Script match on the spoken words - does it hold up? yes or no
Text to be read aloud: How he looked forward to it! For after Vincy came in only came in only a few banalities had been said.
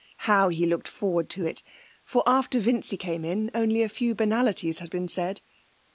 no